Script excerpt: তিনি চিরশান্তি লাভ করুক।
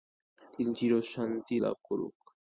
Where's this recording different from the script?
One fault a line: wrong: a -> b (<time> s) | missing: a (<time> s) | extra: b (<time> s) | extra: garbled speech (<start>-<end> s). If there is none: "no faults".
no faults